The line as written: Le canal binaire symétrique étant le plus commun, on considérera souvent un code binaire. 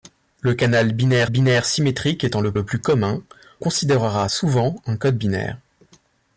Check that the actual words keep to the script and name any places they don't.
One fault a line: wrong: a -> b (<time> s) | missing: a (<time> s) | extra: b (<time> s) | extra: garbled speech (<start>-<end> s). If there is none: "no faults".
extra: binaire (1.3 s)
extra: le (2.5 s)
missing: on (3.2 s)